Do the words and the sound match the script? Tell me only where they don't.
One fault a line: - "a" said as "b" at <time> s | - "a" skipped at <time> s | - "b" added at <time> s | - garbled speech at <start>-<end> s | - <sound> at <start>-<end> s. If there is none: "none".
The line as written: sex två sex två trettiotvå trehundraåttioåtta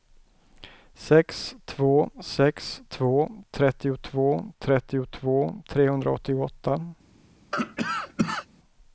- "trettiotvå" added at 4.6 s
- cough at 7.5-8.5 s